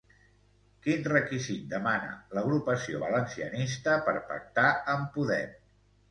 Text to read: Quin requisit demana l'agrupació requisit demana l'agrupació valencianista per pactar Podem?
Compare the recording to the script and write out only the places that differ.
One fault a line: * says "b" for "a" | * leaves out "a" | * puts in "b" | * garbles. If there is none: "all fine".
* leaves out "requisit demana l'agrupació"
* puts in "amb"